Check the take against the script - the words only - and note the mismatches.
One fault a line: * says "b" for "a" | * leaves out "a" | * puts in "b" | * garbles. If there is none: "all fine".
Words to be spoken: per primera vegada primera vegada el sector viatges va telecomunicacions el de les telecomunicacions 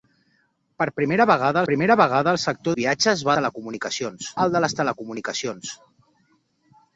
all fine